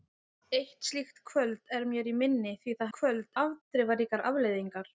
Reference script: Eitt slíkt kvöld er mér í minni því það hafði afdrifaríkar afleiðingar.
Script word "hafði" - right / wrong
wrong